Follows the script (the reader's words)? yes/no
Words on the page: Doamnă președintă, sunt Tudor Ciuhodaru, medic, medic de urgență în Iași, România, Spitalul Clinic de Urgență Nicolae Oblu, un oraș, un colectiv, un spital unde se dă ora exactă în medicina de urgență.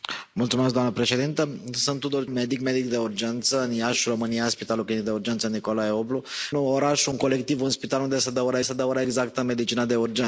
no